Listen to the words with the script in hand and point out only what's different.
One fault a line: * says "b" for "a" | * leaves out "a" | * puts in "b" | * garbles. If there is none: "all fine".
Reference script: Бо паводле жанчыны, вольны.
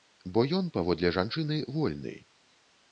* puts in "ён"